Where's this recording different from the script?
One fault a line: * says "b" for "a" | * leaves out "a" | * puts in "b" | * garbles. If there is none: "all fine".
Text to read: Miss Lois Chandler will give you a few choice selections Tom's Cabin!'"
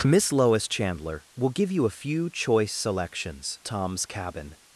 all fine